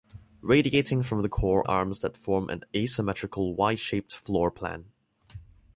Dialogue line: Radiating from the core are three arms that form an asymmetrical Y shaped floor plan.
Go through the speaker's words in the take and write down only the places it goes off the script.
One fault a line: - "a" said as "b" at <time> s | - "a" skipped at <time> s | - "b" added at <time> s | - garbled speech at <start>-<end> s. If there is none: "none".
- "are three" skipped at 1.6 s